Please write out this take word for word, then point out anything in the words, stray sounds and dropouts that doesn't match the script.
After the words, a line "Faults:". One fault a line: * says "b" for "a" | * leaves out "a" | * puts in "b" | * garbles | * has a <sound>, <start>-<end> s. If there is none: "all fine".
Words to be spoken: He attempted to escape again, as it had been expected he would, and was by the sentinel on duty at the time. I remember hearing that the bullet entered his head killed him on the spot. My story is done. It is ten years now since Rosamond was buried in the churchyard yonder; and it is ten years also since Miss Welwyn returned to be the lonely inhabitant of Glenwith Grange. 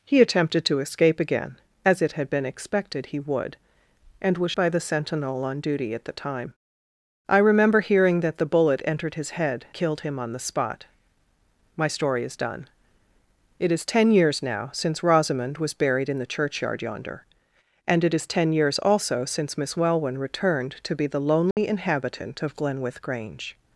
He attempted to escape again, as it had been expected he would, and was by the sentinel on duty at the time. I remember hearing that the bullet entered his head killed him on the spot. My story is done. It is ten years now since Rosamond was buried in the churchyard yonder; and it is ten years also since Miss Welwyn returned to be the lonely inhabitant of Glenwith Grange.
Faults:
* has a dropout, 21.5-21.6 s